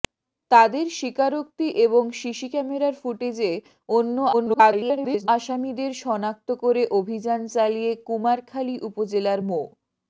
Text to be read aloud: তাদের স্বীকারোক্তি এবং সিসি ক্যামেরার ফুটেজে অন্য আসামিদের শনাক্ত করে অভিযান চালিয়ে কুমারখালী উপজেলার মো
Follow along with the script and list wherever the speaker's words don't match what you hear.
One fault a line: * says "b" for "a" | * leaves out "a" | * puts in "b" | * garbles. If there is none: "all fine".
* garbles